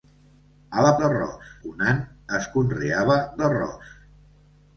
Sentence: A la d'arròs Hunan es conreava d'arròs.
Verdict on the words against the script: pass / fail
pass